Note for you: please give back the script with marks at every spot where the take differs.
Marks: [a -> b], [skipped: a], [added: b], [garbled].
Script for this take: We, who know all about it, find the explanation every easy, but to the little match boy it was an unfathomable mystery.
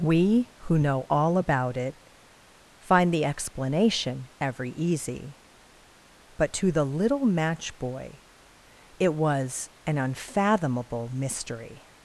We, who know all about it, find the explanation every easy, but to the little match boy it was an unfathomable mystery.